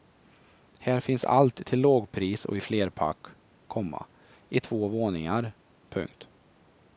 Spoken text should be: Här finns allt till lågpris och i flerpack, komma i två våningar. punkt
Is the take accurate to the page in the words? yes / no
yes